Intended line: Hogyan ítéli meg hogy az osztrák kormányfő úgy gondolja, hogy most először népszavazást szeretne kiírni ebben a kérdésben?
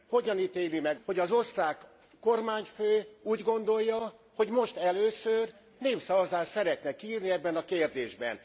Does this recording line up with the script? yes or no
yes